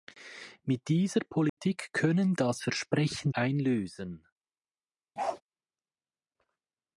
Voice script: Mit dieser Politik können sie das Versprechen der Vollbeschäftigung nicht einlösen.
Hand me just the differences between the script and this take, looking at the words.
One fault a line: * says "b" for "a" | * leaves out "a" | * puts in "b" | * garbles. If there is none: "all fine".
* leaves out "sie"
* leaves out "der Vollbeschäftigung nicht"